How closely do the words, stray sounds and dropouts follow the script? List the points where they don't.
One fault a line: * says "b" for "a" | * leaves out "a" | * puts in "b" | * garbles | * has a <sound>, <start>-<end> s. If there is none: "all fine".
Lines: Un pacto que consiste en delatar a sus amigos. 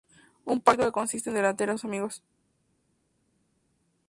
all fine